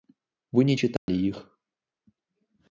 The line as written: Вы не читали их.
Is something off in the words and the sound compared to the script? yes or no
yes